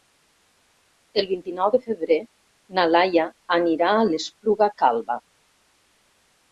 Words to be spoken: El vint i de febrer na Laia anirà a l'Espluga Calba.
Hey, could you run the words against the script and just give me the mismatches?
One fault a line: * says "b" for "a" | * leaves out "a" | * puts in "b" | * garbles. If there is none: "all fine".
* puts in "nou"